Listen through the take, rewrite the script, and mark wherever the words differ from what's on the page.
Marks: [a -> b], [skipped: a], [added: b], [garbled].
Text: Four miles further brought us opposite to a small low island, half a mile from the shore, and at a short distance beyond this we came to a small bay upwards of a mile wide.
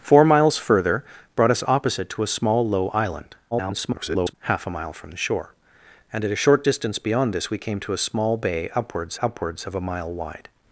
Four miles further brought us opposite to a small low island, [garbled] half a mile from the shore, and at a short distance beyond this we came to a small bay upwards [added: upwards] of a mile wide.